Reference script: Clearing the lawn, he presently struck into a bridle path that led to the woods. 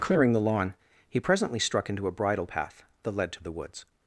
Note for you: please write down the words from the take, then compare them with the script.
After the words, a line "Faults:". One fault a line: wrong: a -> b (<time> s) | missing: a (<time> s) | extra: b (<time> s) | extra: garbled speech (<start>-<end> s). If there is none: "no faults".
Clearing the lawn, he presently struck into a bridle path that led to the woods.
Faults:
no faults